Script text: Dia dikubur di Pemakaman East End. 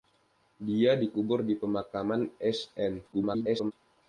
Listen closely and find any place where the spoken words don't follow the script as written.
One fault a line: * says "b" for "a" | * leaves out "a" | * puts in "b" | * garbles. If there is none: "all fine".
* garbles